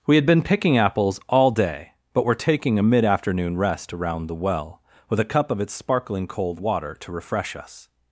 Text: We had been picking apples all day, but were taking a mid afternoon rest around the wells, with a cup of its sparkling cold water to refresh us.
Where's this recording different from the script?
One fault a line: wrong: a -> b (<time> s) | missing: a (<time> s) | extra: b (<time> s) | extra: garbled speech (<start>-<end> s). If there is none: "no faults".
wrong: wells -> well (4.4 s)